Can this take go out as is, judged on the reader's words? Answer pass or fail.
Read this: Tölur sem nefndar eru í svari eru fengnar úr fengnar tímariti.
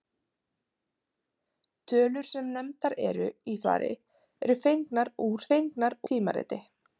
pass